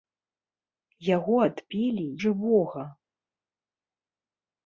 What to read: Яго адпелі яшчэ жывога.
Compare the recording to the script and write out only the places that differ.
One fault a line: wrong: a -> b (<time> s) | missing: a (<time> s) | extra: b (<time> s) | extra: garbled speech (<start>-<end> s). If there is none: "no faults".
missing: яшчэ (2.1 s)